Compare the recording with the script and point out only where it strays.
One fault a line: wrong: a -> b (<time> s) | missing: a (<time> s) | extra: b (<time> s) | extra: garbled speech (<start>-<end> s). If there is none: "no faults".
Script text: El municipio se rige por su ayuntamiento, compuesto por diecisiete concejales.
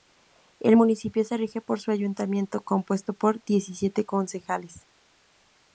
no faults